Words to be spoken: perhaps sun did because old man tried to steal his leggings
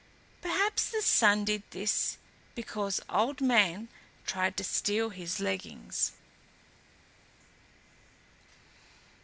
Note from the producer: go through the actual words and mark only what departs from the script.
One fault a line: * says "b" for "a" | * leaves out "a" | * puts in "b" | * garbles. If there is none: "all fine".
* puts in "the"
* puts in "this"